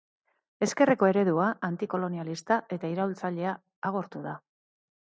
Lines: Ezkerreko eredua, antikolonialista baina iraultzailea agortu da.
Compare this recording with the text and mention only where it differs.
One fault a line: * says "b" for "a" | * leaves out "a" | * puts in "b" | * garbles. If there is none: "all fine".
* says "eta" for "baina"